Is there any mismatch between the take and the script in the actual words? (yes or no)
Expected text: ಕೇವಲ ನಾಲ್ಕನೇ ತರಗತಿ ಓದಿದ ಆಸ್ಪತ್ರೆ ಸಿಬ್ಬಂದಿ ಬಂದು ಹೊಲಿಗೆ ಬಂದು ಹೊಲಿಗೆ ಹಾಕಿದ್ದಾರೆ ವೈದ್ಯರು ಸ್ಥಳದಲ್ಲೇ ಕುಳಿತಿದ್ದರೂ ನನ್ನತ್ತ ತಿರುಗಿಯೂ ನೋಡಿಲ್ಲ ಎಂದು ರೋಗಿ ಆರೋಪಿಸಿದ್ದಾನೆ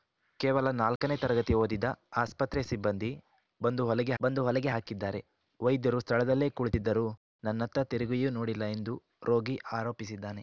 no